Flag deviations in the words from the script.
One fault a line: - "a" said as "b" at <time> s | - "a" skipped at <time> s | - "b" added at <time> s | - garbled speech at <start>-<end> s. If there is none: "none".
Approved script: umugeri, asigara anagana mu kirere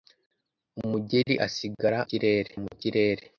- "anagana" said as "kirere" at 2.1 s